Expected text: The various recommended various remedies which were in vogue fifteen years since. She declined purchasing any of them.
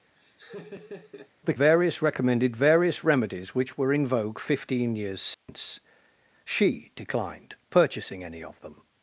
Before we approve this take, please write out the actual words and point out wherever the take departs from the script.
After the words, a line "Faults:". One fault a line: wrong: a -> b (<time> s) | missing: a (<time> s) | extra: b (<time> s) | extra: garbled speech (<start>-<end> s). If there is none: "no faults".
The various recommended various remedies which were in vogue fifteen years since. She declined purchasing any of them.
Faults:
no faults